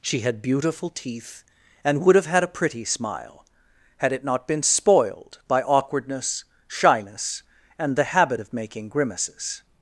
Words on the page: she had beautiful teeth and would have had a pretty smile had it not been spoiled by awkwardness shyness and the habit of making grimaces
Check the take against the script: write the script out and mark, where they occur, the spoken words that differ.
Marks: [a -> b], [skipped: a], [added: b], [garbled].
she had beautiful teeth and would have had a pretty smile had it not been spoiled by awkwardness shyness and the habit of making grimaces